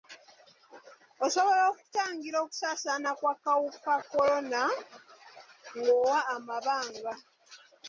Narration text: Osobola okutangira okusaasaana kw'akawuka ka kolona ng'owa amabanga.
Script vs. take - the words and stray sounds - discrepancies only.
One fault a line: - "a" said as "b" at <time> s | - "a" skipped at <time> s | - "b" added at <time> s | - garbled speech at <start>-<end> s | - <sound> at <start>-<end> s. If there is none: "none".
- "ka" skipped at 3.9 s